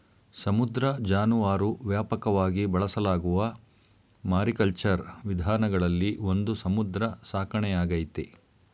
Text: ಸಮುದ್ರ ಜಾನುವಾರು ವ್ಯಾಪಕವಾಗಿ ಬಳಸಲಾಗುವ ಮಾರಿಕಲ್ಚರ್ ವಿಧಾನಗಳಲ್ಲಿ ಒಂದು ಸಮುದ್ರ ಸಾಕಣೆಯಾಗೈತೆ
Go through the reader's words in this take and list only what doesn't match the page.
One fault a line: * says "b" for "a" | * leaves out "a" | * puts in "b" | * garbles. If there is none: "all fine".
all fine